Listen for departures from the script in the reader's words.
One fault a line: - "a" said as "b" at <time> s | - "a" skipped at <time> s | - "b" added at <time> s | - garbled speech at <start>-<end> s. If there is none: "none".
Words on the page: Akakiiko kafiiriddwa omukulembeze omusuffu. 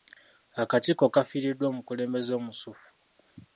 none